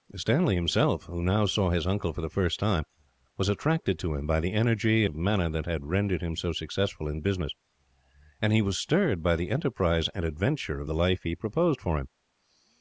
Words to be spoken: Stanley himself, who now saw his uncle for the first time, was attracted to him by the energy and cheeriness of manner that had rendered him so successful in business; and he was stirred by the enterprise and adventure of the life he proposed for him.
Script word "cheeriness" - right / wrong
wrong